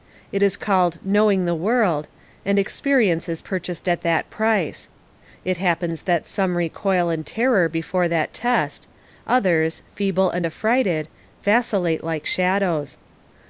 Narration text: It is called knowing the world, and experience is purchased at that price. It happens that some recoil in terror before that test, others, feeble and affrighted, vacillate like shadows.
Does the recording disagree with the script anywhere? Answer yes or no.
no